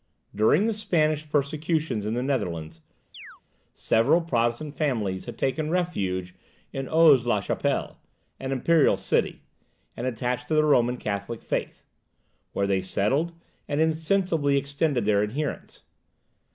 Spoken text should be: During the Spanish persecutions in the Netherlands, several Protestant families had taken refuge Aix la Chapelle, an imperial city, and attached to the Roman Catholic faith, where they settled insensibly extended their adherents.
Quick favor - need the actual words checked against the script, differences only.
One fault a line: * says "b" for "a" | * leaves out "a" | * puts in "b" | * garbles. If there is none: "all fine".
* puts in "in"
* puts in "and"